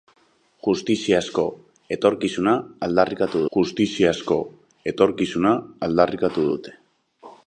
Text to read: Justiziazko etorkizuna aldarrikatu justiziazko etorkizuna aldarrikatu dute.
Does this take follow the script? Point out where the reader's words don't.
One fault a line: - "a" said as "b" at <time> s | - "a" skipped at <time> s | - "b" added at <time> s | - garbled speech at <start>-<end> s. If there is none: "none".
none